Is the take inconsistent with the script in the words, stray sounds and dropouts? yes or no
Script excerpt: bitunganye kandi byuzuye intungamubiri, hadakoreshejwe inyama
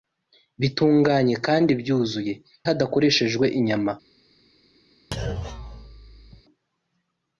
yes